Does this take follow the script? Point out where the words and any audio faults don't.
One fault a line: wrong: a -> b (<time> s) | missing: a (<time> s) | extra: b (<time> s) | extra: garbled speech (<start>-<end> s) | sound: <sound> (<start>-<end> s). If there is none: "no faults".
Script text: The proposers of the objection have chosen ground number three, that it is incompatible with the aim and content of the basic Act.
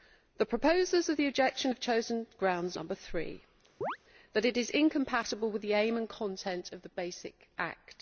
sound: chirp (3.8-4.0 s)